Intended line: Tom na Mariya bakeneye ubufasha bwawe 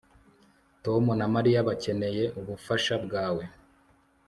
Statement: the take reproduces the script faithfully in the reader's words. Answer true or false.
true